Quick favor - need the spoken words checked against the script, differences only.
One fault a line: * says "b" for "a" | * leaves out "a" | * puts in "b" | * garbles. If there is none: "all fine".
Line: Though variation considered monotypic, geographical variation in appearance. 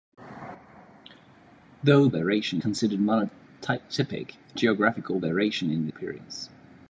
all fine